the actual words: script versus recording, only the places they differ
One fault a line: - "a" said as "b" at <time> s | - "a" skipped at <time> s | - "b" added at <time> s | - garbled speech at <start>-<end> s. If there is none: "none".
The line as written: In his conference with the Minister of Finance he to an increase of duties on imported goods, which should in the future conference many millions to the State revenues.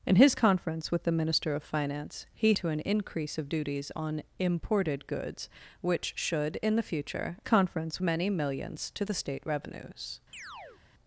none